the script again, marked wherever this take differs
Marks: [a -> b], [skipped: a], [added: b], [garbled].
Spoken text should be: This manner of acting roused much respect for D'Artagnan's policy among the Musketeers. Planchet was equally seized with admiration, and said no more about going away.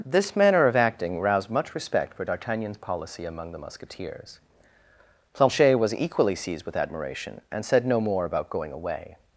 This manner of acting roused much respect for D'Artagnan's policy among the Musketeers. Planchet was equally seized with admiration, and said no more about going away.